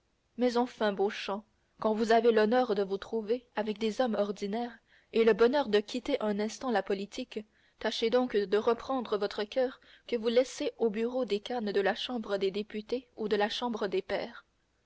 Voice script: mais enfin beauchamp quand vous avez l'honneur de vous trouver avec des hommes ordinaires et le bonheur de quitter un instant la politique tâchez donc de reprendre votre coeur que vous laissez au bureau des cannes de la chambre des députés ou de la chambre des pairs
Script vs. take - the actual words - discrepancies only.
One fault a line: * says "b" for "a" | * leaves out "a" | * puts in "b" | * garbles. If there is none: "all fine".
all fine